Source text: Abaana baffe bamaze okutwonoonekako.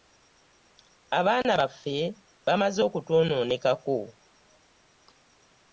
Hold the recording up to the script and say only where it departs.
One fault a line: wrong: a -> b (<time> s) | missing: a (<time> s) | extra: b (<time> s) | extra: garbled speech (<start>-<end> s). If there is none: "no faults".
no faults